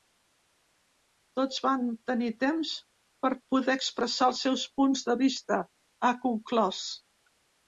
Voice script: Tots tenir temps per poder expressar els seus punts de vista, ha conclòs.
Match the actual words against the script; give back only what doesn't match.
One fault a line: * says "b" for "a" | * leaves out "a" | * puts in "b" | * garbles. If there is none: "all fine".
* puts in "van"